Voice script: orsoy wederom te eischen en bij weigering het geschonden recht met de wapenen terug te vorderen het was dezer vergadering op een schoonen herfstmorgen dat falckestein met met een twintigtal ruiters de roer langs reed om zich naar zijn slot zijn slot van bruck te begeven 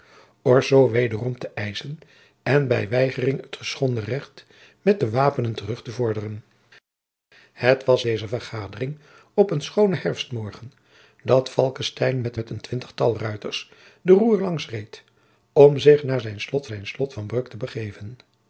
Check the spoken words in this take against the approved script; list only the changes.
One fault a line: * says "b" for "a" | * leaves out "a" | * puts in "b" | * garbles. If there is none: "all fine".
all fine